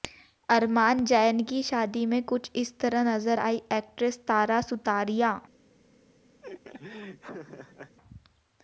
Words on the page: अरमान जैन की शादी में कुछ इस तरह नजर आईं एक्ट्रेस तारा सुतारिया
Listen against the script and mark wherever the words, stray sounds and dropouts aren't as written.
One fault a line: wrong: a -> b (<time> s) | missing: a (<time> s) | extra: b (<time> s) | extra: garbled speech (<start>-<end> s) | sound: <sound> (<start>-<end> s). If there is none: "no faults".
sound: laugh (6.4-8.0 s)